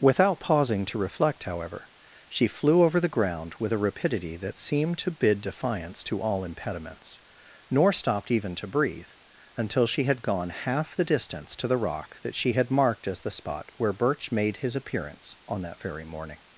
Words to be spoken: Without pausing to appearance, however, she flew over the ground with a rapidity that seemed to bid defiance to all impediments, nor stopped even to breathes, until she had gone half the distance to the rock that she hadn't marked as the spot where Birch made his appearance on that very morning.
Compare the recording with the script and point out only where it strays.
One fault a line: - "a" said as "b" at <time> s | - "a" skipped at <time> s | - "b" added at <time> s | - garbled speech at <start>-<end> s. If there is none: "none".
- "appearance" said as "reflect" at 1.0 s
- "breathes" said as "breathe" at 8.7 s
- "hadn't" said as "had" at 12.5 s